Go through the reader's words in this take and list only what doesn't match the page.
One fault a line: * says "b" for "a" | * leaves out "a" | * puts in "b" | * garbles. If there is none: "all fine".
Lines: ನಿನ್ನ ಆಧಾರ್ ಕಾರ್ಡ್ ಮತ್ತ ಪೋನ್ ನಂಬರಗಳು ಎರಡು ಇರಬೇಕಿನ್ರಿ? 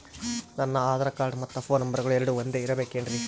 * says "ನನ್ನ" for "ನಿನ್ನ"
* puts in "ಒಂದೆ"